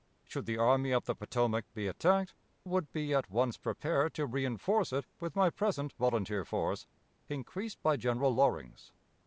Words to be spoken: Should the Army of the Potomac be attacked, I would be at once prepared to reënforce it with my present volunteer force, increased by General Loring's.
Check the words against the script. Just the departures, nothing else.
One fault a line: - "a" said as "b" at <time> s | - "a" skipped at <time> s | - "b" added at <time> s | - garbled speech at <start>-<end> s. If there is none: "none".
- "I" skipped at 2.3 s